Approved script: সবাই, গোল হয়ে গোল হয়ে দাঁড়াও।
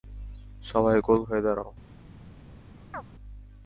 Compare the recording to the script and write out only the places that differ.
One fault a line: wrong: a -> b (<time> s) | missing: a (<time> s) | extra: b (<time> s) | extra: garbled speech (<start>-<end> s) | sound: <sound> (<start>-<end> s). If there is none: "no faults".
missing: গোল হয়ে (1.4 s)
sound: chirp (2.9-3.0 s)